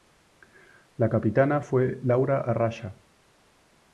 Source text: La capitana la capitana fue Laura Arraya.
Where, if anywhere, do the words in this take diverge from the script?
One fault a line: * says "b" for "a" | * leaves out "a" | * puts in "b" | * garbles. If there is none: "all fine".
* leaves out "la capitana"